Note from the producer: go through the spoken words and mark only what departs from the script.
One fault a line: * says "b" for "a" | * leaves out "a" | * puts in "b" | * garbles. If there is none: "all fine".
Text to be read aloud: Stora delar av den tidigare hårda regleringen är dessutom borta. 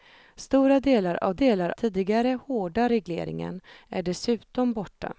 * says "delar" for "den"